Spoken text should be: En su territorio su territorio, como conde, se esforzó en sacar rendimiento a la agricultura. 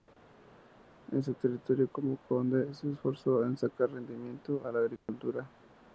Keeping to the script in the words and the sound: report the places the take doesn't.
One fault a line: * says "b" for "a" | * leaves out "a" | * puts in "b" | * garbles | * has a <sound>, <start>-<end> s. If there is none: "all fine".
* leaves out "su territorio"
* has a dropout, 5.0-5.1 s